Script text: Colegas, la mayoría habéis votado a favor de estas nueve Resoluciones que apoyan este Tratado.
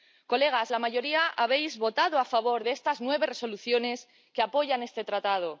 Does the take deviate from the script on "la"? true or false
false